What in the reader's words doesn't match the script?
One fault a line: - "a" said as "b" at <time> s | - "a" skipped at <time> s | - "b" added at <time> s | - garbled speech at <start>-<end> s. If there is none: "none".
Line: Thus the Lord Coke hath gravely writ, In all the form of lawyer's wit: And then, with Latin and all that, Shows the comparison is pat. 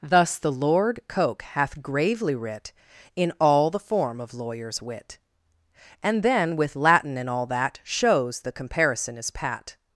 none